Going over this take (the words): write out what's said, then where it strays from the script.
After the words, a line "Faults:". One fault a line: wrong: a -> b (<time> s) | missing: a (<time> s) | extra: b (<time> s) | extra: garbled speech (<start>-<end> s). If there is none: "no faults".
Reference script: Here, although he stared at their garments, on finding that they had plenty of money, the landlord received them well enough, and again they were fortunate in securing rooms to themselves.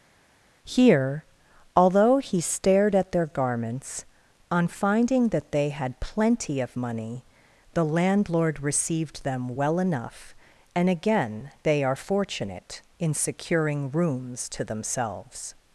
Here, although he stared at their garments, on finding that they had plenty of money, the landlord received them well enough, and again they are fortunate in securing rooms to themselves.
Faults:
wrong: were -> are (11.8 s)